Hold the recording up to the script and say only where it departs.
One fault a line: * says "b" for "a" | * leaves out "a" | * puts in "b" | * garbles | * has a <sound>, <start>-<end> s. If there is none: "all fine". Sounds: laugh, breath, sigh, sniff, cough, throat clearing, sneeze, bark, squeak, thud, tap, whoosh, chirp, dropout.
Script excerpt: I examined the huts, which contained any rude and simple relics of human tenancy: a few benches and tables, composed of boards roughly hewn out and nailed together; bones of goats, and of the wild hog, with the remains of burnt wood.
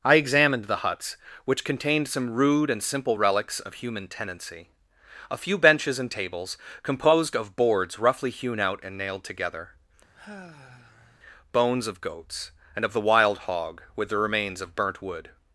* says "some" for "any"
* has a sigh, 10.1-11.2 s